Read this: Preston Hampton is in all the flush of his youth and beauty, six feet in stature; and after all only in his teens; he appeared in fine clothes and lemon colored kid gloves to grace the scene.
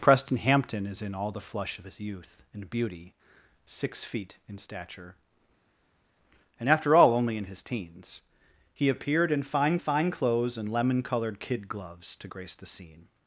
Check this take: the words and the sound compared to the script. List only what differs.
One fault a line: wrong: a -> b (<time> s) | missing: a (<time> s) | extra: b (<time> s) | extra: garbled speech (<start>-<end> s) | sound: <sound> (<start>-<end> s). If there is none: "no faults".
extra: fine (9.8 s)